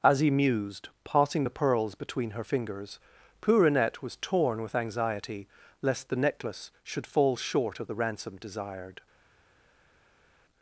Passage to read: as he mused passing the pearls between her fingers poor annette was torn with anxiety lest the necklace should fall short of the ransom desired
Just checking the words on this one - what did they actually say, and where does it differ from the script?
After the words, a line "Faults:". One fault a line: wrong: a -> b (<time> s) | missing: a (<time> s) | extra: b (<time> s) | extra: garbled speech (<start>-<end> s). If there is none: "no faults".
as he mused passing the pearls between her fingers poor annette was torn with anxiety lest the necklace should fall short of the ransom desired
Faults:
no faults